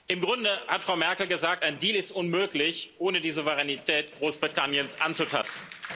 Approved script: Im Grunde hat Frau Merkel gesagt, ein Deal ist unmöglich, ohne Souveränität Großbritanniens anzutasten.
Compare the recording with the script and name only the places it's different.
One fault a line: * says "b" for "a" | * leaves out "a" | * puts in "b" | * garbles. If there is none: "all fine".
* puts in "die"